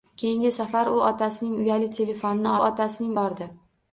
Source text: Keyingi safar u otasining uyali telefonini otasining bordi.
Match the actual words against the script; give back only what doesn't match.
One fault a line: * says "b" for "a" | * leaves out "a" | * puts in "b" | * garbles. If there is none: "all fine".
all fine